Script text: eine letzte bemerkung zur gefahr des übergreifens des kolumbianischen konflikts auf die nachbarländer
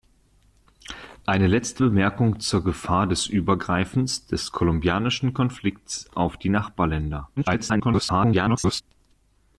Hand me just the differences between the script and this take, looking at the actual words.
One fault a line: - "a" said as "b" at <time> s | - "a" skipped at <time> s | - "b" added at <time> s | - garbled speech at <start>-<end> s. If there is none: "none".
- garbled speech at 7.4-8.8 s